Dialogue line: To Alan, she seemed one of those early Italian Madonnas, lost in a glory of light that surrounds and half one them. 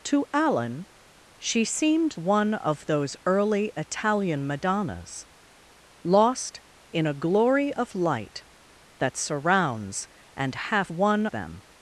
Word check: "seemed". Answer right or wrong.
right